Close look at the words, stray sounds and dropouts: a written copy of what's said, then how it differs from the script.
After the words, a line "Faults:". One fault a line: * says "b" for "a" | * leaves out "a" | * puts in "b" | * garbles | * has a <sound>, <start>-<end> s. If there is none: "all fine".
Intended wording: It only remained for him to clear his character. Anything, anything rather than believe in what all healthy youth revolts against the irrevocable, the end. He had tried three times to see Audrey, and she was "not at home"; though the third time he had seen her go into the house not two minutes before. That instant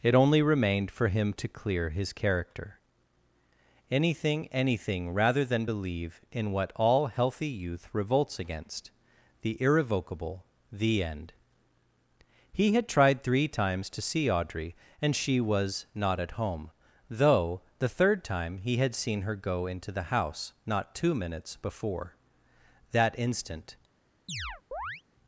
It only remained for him to clear his character. Anything, anything rather than believe in what all healthy youth revolts against the irrevocable, the end. He had tried three times to see Audrey, and she was "not at home"; though the third time he had seen her go into the house not two minutes before. That instant
Faults:
* has a chirp, 24.3-25.0 s